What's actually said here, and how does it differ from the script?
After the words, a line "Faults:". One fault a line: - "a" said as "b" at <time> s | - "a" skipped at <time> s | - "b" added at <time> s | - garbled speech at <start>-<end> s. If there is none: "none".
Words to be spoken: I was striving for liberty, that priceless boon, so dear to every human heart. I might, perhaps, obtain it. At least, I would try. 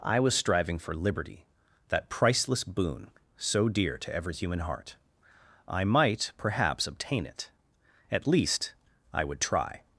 I was striving for liberty, that priceless boon, so dear to every human heart. I might, perhaps, obtain it. At least, I would try.
Faults:
none